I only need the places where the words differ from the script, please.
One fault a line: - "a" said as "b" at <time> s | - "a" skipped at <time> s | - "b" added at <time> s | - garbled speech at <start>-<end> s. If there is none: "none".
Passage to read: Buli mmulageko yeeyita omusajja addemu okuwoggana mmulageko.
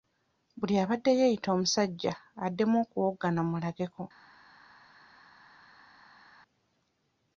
- "mmulageko" said as "abadde" at 0.8 s